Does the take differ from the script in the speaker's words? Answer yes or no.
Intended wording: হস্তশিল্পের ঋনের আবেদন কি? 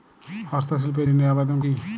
no